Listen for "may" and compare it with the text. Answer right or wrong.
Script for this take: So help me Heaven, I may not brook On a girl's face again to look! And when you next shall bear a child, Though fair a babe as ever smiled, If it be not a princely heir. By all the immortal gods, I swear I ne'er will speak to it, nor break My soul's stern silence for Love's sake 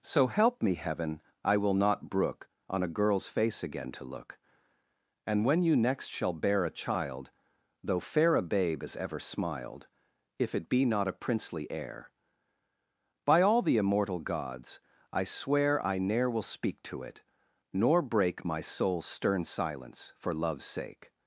wrong